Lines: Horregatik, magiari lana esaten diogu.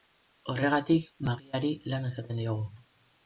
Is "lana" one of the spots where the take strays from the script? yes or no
no